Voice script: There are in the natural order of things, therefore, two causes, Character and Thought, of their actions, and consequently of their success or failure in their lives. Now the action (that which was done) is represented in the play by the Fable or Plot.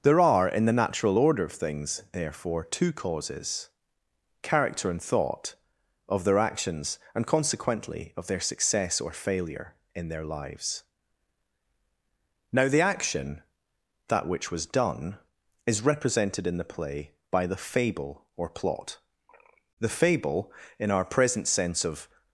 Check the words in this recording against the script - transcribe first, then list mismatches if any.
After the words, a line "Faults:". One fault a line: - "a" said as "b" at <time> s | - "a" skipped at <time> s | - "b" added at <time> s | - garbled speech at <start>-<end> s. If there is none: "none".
There are in the natural order of things, therefore, two causes, Character and Thought, of their actions, and consequently of their success or failure in their lives. Now the action (that which was done) is represented in the play by the Fable or Plot. The Fable, in our present sense of
Faults:
- "The Fable in our present sense of" added at 19.8 s